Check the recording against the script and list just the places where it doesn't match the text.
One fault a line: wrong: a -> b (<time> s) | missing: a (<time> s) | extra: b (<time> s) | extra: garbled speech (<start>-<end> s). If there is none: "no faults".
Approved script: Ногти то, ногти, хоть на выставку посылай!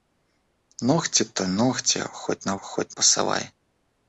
wrong: выставку -> хоть (2.6 s)